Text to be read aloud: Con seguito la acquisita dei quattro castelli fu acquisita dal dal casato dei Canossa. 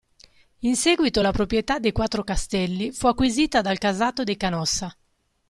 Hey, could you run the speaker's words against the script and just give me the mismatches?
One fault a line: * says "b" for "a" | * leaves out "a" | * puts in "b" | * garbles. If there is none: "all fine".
* says "In" for "Con"
* says "proprietà" for "acquisita"
* leaves out "dal"